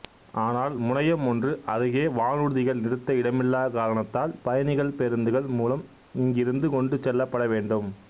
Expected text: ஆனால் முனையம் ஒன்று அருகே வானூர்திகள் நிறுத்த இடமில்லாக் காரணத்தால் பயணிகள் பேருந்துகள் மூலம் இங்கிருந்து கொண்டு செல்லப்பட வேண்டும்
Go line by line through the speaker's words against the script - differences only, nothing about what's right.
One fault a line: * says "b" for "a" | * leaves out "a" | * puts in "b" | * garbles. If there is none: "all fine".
all fine